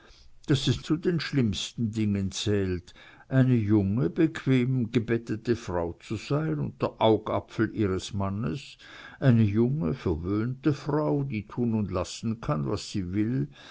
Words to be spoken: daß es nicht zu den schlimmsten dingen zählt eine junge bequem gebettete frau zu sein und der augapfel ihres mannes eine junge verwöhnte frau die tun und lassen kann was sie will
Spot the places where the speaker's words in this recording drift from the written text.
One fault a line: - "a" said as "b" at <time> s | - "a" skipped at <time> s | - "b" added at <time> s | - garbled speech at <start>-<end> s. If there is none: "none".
- "nicht" skipped at 0.8 s